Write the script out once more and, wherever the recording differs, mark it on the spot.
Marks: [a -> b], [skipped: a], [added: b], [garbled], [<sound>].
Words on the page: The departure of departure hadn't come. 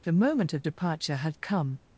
The [departure -> moment] of departure [hadn't -> had] come.